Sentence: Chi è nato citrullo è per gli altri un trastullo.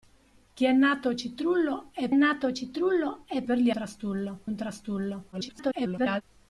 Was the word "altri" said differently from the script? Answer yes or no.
yes